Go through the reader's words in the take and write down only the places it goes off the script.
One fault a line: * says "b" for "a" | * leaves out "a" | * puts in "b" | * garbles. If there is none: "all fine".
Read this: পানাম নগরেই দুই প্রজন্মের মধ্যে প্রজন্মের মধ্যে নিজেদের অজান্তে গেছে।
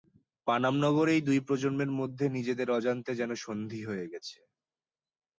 * says "নিজেদের অজান্তে যেন সন্ধি হয়ে" for "প্রজন্মের মধ্যে নিজেদের অজান্তে"